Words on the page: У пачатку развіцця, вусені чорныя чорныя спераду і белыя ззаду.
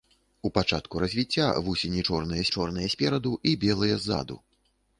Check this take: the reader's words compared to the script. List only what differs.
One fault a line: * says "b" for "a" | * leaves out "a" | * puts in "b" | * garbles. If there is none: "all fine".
all fine